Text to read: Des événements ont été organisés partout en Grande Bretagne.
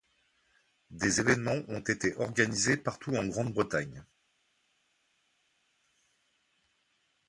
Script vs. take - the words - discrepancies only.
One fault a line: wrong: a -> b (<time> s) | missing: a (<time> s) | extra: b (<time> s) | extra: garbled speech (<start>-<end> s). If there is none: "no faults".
no faults